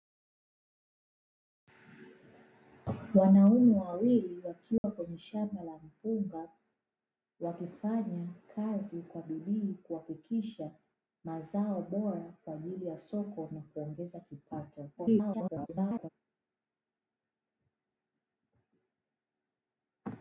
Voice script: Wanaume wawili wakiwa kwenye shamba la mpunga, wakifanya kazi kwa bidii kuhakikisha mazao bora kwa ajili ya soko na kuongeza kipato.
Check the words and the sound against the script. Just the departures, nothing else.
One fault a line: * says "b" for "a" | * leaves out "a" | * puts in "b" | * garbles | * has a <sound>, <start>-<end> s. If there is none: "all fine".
* has a dropout, 4.8-4.8 s
* garbles